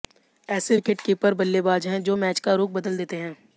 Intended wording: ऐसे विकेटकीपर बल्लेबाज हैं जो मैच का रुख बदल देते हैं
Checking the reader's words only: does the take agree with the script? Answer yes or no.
yes